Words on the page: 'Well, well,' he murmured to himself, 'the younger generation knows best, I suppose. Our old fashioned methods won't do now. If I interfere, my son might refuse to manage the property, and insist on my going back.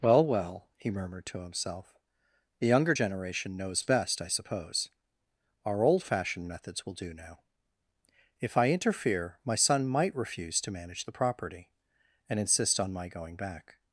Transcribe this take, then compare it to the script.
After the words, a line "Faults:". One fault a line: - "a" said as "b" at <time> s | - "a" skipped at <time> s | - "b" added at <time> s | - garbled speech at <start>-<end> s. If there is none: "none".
'Well, well,' he murmured to himself, 'the younger generation knows best, I suppose. Our old fashioned methods will do now. If I interfere, my son might refuse to manage the property, and insist on my going back.
Faults:
- "won't" said as "will" at 6.9 s